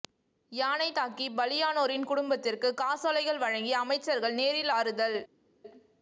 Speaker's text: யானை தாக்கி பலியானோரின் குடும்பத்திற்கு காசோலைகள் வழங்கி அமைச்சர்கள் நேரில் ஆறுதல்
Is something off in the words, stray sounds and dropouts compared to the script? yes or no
no